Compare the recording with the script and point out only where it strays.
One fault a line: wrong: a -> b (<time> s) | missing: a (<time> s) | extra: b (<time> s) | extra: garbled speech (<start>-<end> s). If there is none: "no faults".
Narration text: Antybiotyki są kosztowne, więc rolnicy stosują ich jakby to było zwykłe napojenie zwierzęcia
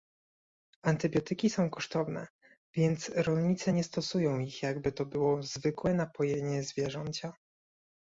extra: nie (3.7 s)